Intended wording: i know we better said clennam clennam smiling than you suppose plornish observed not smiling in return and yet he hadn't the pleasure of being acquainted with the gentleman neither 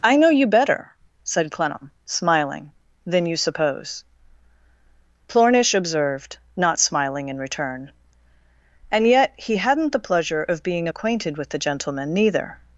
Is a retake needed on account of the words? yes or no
yes